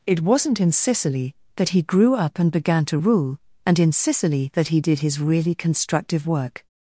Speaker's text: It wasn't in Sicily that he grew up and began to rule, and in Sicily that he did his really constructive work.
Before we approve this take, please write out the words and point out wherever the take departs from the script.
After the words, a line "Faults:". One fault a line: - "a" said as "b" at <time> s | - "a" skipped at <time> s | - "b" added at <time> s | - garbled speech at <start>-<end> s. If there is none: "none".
It wasn't in Sicily that he grew up and began to rule, and in Sicily that he did his really constructive work.
Faults:
none